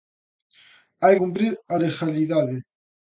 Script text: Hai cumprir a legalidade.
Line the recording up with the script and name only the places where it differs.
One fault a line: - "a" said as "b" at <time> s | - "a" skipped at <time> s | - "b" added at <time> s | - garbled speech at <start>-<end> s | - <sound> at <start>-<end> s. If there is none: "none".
none